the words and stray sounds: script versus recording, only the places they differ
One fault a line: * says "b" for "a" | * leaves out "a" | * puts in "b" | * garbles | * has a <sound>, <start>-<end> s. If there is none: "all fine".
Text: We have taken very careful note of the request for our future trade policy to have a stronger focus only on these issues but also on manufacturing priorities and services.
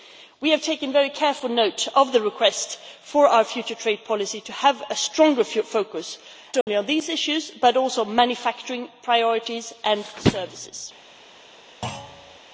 * has a dropout, 6.6-6.7 s
* has a thud, 11.8-12.4 s